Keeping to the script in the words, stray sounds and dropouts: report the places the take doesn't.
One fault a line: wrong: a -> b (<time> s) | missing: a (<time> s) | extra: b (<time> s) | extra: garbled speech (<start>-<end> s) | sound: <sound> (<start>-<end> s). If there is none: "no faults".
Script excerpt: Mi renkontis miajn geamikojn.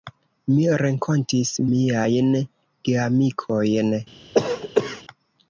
sound: cough (4.3-5.0 s)